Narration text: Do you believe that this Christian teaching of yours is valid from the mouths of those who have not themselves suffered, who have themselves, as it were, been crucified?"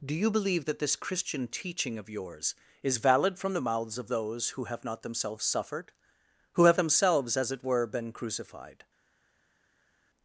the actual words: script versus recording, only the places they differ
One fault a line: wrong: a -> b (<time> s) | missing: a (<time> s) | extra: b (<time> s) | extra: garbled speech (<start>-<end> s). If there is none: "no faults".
no faults